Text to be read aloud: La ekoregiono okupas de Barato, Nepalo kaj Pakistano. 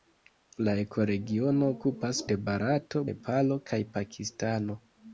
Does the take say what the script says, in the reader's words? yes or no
yes